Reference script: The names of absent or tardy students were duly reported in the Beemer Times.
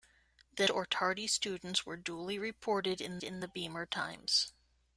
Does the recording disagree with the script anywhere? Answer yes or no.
yes